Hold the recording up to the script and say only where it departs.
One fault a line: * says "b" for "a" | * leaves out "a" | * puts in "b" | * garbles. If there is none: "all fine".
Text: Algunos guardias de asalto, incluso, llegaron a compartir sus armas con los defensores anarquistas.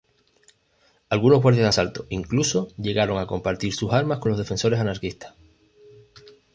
all fine